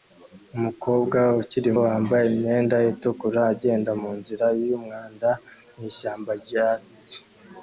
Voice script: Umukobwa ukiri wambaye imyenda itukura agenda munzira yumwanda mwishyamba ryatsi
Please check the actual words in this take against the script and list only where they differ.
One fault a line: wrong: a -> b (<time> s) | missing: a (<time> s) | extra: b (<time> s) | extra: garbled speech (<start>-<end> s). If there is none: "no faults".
no faults